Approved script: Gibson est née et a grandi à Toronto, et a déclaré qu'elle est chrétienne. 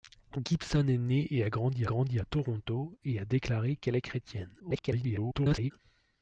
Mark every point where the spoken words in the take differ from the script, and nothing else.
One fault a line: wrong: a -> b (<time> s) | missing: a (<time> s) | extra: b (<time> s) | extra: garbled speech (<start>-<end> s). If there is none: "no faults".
extra: grandi (1.9 s)
extra: garbled speech (4.6-5.7 s)